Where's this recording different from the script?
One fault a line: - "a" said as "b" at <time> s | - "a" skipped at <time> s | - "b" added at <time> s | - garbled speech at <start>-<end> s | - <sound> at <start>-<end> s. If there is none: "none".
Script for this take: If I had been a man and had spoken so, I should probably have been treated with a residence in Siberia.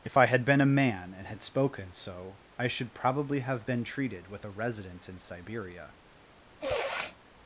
- sniff at 6.6-7.2 s